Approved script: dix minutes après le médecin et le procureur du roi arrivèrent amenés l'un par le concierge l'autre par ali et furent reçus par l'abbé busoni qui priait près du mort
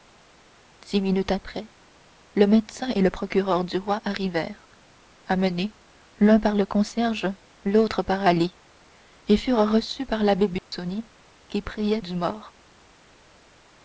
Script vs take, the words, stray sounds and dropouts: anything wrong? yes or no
yes